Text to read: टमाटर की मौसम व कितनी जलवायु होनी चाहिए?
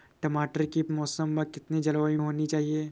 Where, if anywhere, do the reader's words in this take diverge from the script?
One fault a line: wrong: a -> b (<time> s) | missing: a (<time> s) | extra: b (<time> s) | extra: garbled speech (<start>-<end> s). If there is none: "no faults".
no faults